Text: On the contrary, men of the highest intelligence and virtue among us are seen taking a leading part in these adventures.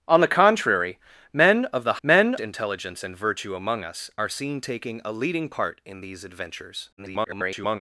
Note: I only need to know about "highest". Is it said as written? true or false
false